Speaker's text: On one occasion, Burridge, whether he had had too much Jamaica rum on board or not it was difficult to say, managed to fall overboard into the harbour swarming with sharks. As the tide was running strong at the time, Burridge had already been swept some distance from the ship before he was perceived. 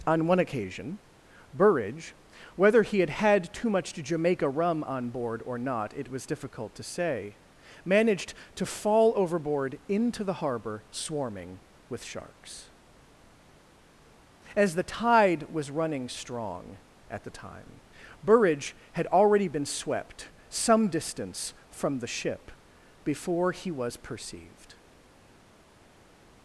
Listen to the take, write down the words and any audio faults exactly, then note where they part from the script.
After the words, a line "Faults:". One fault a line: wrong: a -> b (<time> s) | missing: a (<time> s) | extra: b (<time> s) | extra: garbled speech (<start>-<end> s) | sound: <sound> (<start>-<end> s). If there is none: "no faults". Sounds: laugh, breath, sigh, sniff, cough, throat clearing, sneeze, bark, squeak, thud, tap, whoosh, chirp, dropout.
On one occasion, Burridge, whether he had had too much Jamaica rum on board or not it was difficult to say, managed to fall overboard into the harbour swarming with sharks. As the tide was running strong at the time, Burridge had already been swept some distance from the ship before he was perceived.
Faults:
no faults